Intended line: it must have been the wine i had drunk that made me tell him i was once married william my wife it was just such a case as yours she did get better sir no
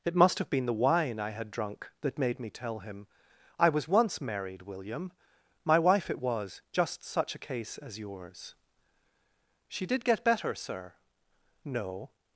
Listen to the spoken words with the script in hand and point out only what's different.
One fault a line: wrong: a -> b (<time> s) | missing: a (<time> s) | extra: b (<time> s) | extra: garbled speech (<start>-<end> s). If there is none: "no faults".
no faults